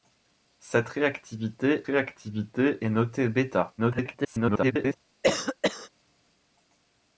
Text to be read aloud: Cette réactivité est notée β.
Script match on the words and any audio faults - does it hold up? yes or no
no